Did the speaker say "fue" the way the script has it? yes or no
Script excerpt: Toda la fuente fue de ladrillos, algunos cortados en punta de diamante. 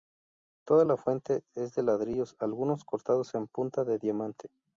no